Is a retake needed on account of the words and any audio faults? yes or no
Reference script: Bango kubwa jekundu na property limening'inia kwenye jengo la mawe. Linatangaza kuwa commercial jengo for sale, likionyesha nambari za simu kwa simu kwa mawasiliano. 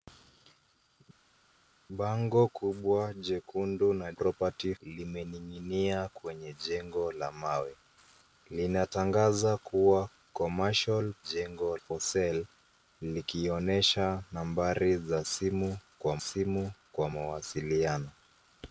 no